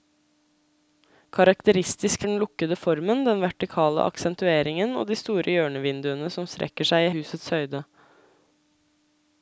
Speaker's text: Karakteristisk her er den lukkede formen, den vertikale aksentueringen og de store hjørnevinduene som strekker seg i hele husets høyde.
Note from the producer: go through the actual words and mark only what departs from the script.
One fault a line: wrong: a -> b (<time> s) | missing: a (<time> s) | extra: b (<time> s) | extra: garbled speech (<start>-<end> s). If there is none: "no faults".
missing: her (2.2 s)
missing: hele (7.1 s)